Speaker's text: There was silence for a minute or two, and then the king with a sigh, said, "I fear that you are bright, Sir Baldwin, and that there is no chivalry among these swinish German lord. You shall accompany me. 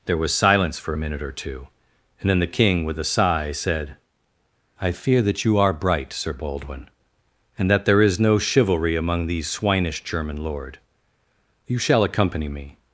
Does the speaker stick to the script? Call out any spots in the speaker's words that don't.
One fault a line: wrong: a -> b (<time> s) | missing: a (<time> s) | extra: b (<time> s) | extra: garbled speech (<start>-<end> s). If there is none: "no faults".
no faults